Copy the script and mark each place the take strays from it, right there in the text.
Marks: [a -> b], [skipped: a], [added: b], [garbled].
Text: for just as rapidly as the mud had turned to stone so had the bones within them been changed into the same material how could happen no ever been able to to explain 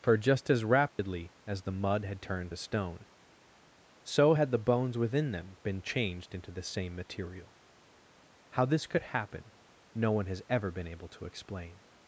for just as rapidly as the mud had turned to stone so had the bones within them been changed into the same material how [added: this] could happen no [added: one has] ever been able to [skipped: to] explain